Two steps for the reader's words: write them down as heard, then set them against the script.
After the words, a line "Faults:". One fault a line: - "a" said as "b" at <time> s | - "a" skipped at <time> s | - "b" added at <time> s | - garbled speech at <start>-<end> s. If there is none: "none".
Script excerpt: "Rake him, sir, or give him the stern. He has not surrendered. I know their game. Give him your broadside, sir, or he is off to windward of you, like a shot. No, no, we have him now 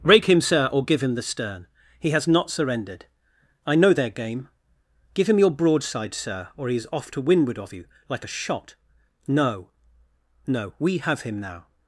"Rake him, sir, or give him the stern. He has not surrendered. I know their game. Give him your broadside, sir, or he is off to windward of you, like a shot. No, no, we have him now
Faults:
none